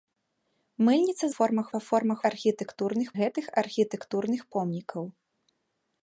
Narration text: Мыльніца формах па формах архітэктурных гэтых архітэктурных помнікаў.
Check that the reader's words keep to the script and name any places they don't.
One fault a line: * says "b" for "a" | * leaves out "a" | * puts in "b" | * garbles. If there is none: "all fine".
all fine